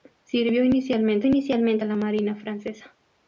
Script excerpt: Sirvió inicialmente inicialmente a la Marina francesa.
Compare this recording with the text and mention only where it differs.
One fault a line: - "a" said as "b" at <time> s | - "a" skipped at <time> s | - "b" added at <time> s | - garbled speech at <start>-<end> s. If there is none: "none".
none